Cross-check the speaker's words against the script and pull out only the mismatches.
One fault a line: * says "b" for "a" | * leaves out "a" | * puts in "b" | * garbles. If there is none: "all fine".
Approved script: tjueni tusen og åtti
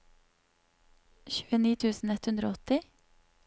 * puts in "ett hundre"